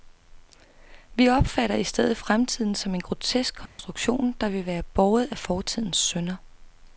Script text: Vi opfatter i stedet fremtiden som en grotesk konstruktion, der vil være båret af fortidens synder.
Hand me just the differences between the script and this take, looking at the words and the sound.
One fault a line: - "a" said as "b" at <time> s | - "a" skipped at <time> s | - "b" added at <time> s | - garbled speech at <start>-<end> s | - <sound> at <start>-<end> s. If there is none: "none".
- dropout at 3.7-3.8 s